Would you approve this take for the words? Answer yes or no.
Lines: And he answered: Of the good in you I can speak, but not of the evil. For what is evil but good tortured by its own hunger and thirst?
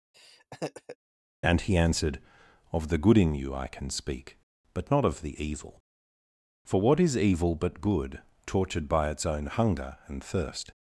yes